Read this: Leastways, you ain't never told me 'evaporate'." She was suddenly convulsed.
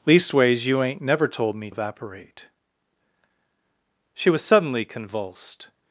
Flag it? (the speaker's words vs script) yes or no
no